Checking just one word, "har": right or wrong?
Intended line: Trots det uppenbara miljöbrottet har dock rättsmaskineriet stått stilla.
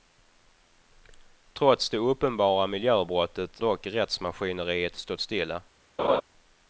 wrong